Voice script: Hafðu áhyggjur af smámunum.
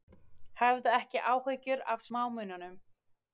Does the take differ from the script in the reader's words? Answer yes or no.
yes